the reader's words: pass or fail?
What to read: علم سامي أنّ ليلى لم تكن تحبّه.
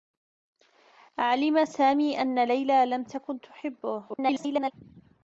fail